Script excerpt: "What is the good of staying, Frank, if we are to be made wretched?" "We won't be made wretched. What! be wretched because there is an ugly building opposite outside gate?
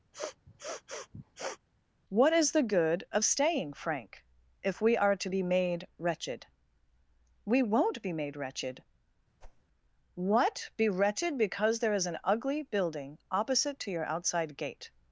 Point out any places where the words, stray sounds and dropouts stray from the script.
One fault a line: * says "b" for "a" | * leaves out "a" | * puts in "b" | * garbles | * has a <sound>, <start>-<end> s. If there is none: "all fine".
* has a sniff, 0.1-1.6 s
* has a whoosh, 9.4-9.6 s
* puts in "to your"